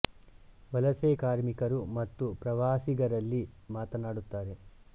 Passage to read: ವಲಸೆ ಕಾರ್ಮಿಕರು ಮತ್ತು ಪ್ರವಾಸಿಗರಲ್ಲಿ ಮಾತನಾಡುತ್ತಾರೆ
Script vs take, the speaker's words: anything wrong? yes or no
no